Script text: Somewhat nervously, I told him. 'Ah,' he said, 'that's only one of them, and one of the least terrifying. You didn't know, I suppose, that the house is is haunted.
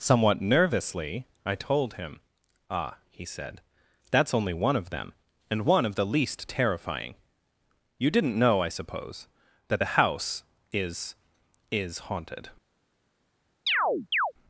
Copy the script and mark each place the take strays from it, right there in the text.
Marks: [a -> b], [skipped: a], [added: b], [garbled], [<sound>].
Somewhat nervously, I told him. 'Ah,' he said, 'that's only one of them, and one of the least terrifying. You didn't know, I suppose, that the house is is haunted. [chirp]